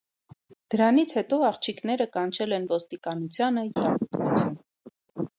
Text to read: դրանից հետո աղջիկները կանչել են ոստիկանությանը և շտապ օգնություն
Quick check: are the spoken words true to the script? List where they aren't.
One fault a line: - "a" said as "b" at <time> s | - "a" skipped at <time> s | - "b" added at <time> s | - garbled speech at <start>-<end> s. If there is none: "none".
- "և" skipped at 3.7 s